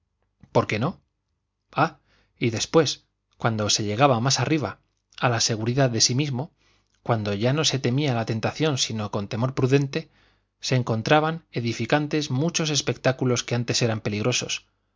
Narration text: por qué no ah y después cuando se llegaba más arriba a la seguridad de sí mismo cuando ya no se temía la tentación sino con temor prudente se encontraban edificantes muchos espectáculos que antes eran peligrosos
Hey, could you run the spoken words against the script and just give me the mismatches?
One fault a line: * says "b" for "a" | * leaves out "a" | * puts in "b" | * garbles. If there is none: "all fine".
all fine